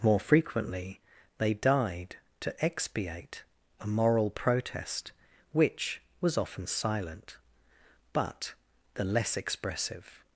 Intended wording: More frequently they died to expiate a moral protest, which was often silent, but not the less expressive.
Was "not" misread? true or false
true